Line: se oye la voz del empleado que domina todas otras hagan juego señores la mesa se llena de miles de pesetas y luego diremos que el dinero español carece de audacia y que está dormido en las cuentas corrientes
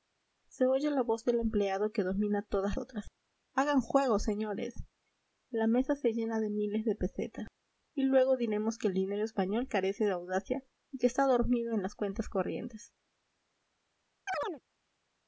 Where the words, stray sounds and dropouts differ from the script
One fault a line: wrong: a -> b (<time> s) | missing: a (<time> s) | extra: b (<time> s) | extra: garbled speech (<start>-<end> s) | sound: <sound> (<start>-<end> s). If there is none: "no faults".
sound: chirp (14.3-14.6 s)